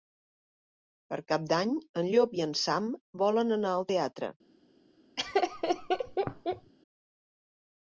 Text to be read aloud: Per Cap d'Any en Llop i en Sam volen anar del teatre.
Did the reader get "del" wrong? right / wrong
wrong